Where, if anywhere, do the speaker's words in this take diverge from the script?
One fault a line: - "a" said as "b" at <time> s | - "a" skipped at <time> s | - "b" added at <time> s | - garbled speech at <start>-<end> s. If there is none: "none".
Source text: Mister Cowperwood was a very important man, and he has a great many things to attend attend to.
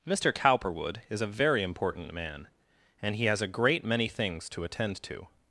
- "was" said as "is" at 1.1 s
- "attend" skipped at 5.0 s